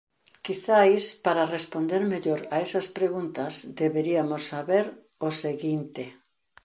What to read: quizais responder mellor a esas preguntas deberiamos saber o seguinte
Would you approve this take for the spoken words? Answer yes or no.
no